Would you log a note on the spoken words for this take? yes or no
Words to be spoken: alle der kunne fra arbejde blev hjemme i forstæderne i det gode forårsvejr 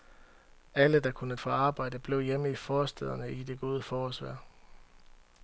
no